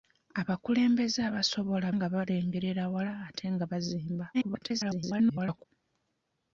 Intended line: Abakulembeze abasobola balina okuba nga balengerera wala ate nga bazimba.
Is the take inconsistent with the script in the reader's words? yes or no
yes